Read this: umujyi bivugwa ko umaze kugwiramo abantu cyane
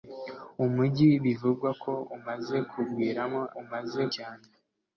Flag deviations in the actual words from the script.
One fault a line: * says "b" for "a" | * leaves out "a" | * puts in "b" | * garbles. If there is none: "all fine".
* says "umaze" for "abantu"